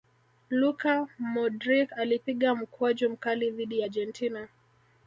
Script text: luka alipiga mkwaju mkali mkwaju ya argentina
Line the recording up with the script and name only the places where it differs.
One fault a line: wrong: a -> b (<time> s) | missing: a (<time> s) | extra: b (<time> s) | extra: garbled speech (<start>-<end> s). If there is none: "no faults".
extra: modric (1.2 s)
wrong: mkwaju -> dhidi (3.5 s)